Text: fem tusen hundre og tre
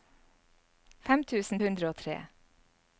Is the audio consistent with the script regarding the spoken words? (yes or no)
yes